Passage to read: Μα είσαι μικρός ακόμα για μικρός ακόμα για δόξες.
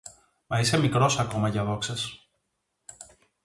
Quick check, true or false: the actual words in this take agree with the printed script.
false